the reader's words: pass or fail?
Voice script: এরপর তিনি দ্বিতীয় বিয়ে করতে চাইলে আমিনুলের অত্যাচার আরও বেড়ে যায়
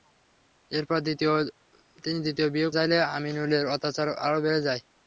fail